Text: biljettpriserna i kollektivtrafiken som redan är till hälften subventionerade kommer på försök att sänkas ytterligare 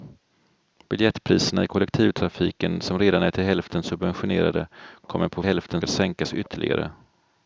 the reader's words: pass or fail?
fail